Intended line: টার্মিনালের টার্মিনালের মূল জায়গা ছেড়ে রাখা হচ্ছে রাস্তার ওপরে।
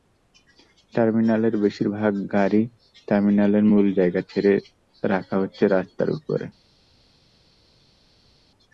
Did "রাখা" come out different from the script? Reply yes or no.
no